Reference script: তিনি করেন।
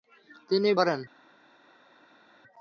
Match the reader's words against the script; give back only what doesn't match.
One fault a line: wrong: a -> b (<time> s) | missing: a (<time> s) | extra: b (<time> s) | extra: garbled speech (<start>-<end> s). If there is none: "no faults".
no faults